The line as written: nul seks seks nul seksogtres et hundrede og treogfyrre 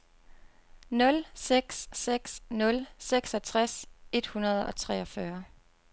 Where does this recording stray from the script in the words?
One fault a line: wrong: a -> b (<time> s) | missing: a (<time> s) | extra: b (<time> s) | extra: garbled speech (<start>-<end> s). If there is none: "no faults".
no faults